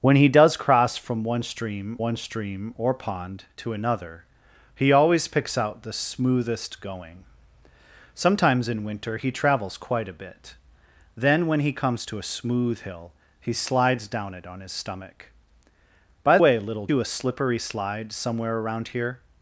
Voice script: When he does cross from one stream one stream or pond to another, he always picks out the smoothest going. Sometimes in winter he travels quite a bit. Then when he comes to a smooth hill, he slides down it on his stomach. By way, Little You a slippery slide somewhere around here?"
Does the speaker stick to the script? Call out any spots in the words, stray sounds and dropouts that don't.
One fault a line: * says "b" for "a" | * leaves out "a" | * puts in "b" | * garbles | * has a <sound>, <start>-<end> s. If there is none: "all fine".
all fine